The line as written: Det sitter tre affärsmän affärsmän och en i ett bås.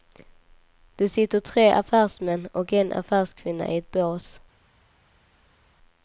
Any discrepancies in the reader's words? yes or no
yes